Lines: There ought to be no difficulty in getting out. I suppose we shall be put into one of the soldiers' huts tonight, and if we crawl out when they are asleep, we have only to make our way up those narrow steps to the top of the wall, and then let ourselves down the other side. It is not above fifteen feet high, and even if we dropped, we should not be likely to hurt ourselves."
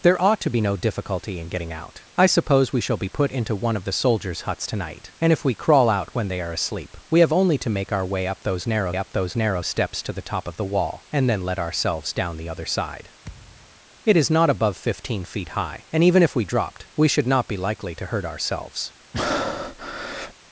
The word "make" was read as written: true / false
true